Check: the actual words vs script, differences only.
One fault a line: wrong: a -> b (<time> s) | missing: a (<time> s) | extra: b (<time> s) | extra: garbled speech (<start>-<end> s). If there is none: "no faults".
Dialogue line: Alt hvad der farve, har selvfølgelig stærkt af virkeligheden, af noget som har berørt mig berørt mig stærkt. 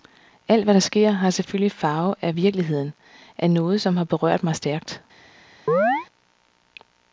wrong: farve -> sker (0.8 s)
wrong: stærkt -> farve (1.7 s)
missing: berørt mig (4.5 s)